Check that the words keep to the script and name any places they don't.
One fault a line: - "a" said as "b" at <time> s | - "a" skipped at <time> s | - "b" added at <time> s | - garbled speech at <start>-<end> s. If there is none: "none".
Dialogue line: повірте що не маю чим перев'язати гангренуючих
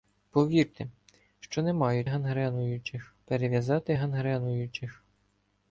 - "чим" said as "гангренуючих" at 2.0 s